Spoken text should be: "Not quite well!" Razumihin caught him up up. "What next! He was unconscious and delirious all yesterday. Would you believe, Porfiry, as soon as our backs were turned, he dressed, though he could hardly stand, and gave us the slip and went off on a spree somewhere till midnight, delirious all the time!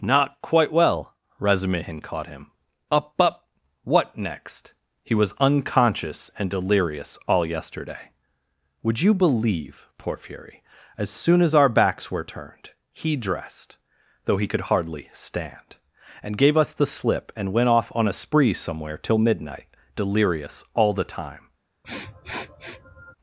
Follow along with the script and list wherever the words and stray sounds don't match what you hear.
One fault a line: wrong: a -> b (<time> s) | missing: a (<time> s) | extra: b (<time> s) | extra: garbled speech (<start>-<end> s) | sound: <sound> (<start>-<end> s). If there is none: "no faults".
sound: sniff (21.8-23.1 s)